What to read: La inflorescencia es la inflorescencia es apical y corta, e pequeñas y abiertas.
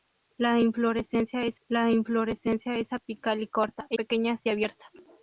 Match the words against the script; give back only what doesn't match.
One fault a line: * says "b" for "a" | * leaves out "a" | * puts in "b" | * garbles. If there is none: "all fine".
all fine